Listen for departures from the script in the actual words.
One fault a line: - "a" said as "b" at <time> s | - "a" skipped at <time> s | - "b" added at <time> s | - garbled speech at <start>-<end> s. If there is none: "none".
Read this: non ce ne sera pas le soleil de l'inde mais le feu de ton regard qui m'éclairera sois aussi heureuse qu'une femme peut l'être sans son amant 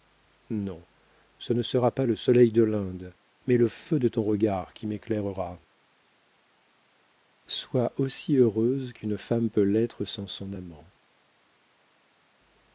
none